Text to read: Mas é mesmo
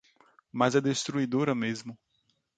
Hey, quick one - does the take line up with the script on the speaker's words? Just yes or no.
no